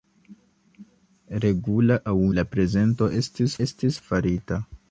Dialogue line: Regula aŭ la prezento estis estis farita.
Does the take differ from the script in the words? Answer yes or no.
no